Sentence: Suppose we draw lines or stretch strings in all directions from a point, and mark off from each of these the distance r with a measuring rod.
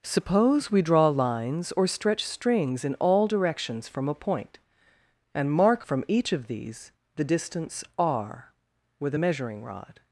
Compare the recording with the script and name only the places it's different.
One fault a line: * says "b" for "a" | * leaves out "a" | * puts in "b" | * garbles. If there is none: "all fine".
* leaves out "off"